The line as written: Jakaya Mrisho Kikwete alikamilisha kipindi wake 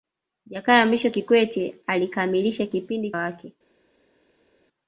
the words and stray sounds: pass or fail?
pass